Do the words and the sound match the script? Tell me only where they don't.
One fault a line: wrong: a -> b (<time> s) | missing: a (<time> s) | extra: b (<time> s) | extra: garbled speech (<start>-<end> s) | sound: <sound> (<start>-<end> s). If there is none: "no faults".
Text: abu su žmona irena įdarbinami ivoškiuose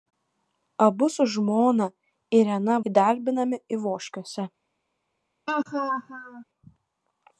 sound: laugh (5.5-6.4 s)